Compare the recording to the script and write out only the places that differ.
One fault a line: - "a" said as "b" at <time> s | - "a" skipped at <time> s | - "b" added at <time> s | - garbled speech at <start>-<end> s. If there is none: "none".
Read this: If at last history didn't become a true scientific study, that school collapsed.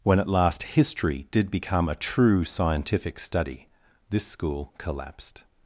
- "If" said as "When" at 0.0 s
- "didn't" said as "did" at 1.3 s
- "that" said as "this" at 4.1 s